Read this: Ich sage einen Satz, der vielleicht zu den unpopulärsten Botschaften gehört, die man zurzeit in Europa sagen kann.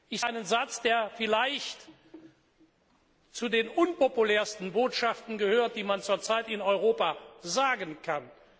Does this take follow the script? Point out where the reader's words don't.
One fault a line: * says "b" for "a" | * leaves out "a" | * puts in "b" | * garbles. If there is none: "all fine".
* leaves out "sage"